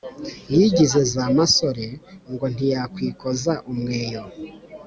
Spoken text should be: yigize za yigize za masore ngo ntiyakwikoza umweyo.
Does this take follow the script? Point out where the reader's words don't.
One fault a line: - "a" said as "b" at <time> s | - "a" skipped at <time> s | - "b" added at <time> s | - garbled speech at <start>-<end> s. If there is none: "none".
- "yigize za" skipped at 1.2 s